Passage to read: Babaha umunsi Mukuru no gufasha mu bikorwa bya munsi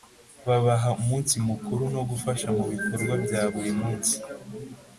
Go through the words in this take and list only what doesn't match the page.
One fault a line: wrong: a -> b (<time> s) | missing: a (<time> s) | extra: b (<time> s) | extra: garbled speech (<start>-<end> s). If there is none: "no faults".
extra: buri (3.5 s)